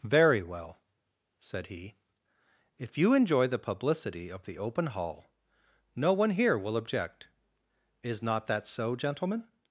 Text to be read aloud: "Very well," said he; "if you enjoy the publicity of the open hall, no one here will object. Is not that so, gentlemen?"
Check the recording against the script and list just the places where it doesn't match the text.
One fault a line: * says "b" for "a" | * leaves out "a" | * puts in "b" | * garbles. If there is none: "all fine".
all fine